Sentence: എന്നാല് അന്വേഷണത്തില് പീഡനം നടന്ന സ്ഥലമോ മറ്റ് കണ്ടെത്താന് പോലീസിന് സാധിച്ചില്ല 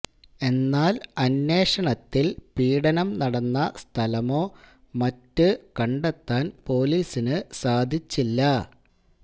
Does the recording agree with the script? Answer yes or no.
yes